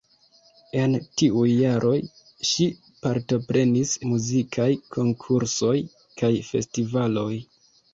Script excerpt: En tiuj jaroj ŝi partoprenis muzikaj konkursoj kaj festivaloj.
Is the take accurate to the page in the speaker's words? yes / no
yes